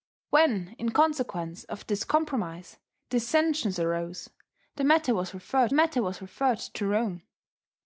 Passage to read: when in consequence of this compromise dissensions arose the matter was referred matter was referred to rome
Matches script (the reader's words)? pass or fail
pass